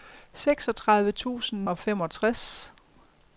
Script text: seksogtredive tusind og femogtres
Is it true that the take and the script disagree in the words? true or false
false